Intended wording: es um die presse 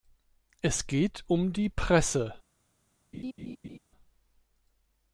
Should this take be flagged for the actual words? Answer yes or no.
yes